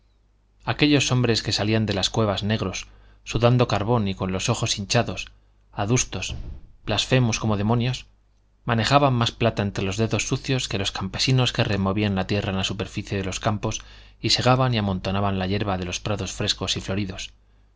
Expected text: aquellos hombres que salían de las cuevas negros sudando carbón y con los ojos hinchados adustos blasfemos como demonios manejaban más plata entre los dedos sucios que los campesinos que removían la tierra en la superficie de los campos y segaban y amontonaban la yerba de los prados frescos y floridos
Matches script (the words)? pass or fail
pass